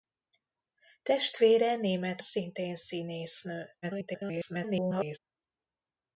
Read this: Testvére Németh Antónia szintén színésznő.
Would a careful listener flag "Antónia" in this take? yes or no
yes